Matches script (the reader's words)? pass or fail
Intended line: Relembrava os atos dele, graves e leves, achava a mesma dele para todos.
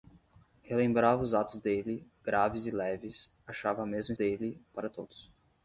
pass